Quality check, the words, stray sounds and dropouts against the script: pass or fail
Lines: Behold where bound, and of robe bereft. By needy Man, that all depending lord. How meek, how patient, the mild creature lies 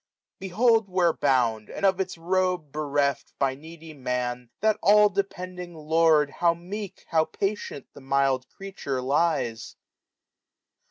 fail